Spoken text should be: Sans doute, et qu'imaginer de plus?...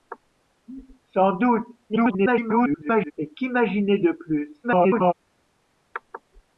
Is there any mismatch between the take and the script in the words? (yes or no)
yes